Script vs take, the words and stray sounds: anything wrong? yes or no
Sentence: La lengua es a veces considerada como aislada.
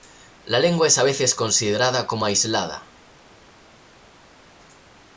no